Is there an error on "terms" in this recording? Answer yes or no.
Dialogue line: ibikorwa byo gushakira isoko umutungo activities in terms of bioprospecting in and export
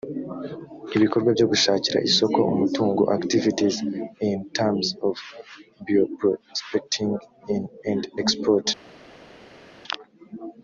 no